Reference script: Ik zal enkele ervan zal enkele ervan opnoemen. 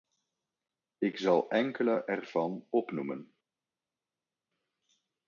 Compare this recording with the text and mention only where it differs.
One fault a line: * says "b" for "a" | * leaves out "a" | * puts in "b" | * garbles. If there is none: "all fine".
* leaves out "zal enkele ervan"